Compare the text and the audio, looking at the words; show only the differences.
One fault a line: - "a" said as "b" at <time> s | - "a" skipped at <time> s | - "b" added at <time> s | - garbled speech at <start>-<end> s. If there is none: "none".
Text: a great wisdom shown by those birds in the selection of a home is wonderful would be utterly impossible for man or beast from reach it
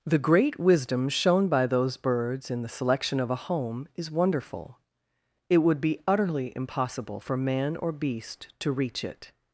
- "a" said as "the" at 0.0 s
- "it" added at 5.5 s
- "from" said as "to" at 8.6 s